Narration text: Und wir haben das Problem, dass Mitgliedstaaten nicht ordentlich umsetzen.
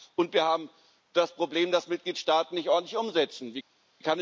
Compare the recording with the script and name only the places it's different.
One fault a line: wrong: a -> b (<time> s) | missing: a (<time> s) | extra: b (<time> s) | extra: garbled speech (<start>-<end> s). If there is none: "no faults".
no faults